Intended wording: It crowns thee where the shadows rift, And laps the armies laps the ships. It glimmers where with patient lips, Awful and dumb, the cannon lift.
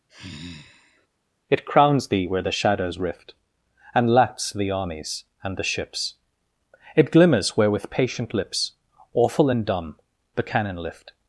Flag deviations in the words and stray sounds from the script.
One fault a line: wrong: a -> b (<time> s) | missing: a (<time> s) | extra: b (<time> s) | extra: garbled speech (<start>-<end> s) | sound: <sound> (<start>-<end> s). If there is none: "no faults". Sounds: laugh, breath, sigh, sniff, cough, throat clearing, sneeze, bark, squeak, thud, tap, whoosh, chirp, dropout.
sound: sigh (0.1-1.1 s)
wrong: laps -> and (5.4 s)